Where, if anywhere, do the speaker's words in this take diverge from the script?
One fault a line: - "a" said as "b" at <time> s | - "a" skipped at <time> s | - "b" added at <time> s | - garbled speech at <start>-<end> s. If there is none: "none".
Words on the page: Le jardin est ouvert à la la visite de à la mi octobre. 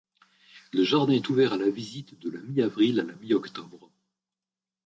- "visite de" added at 1.7 s
- "visite de" said as "mi avril" at 2.4 s